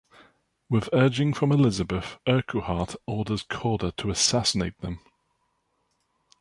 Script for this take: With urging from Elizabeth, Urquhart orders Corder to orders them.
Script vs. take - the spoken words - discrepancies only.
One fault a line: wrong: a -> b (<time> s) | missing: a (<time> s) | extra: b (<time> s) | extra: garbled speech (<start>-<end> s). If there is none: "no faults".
wrong: orders -> assassinate (4.1 s)